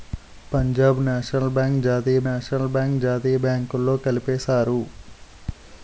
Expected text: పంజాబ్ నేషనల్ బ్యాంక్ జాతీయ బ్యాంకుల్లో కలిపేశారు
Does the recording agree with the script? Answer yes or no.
no